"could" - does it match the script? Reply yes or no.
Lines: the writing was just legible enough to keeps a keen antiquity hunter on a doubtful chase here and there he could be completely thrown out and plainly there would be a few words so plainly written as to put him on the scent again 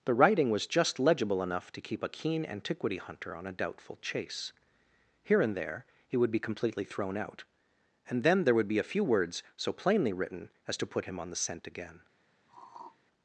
no